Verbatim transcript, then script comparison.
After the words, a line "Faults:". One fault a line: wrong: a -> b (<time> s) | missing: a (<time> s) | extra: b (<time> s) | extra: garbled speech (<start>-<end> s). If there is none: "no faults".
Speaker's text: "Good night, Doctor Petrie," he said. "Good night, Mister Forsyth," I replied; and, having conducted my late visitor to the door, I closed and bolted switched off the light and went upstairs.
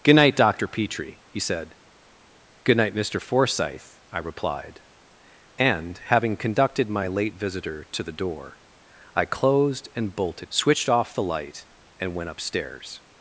"Good night, Doctor Petrie," he said. "Good night, Mister Forsyth," I replied; and, having conducted my late visitor to the door, I closed and bolted switched off the light and went upstairs.
Faults:
no faults